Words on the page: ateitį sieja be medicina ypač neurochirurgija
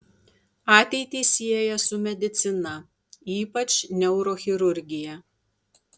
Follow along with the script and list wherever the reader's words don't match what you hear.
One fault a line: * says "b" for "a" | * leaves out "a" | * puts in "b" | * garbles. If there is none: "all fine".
* says "su" for "be"